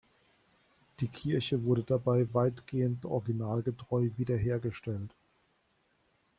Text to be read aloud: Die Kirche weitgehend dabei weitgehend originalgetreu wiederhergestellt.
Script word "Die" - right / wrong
right